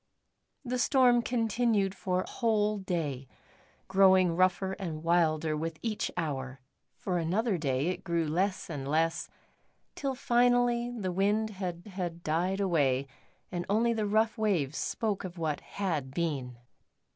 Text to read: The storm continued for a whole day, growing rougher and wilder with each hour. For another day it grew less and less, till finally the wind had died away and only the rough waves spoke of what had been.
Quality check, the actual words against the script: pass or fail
fail